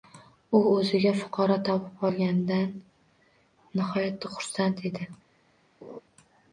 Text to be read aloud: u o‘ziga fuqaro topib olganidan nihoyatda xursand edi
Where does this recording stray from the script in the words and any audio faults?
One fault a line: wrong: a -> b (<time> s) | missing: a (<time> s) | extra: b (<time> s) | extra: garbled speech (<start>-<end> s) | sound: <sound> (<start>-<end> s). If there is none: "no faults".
sound: laugh (5.8-6.0 s)